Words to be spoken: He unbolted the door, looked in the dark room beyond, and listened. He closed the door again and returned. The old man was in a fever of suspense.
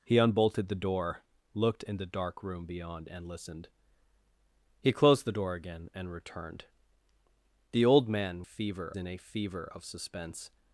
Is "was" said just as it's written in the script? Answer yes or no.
no